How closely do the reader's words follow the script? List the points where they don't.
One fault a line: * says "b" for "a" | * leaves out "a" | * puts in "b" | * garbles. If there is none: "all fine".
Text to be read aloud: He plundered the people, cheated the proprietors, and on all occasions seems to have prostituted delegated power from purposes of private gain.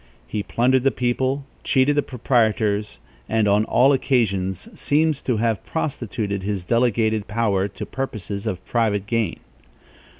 * puts in "his"
* says "to" for "from"